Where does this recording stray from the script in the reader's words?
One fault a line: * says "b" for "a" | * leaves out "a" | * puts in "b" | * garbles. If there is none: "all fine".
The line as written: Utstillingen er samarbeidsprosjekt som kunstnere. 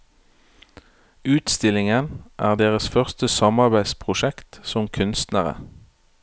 * puts in "deres første"